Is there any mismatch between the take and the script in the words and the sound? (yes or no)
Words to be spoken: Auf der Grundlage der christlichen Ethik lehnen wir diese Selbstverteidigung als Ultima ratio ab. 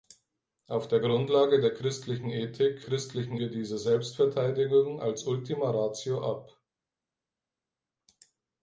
yes